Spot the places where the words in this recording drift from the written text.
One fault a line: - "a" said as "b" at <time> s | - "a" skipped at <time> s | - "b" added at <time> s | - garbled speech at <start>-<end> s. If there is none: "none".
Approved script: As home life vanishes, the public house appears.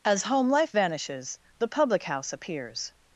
none